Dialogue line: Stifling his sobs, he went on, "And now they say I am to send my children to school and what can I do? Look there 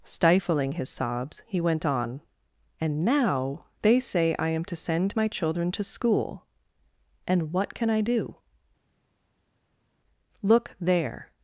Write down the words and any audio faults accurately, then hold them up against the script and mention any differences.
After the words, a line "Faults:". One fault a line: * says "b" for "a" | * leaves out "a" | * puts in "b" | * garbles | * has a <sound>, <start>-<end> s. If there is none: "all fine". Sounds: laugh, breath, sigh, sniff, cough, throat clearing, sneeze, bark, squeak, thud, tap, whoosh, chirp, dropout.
Stifling his sobs, he went on, "And now they say I am to send my children to school and what can I do? Look there
Faults:
all fine